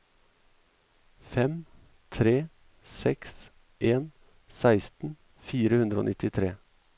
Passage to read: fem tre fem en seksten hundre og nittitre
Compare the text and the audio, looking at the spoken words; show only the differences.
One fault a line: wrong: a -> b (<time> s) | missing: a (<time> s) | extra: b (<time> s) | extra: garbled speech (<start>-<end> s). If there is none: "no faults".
wrong: fem -> seks (2.9 s)
extra: fire (5.5 s)